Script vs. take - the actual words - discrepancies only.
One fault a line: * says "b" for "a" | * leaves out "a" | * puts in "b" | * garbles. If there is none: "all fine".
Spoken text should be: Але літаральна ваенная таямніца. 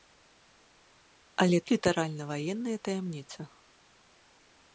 all fine